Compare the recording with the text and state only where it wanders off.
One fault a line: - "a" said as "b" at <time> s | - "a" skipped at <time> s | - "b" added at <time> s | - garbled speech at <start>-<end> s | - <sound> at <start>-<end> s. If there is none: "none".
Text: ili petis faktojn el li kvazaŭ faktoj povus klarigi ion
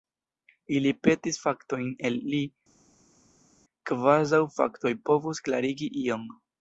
none